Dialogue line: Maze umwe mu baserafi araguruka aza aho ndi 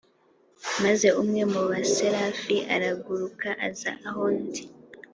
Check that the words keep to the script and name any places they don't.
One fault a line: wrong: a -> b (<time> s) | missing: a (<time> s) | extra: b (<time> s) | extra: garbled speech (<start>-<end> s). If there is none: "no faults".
no faults